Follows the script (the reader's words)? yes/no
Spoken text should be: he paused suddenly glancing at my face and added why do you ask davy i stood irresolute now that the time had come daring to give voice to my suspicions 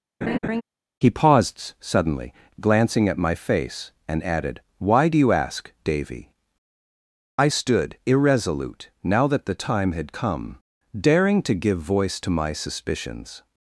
yes